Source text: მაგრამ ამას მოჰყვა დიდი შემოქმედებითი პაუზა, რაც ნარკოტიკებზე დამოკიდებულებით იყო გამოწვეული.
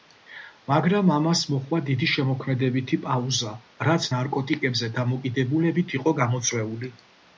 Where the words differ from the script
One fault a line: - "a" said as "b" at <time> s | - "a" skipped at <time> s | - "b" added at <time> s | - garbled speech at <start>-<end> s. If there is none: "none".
none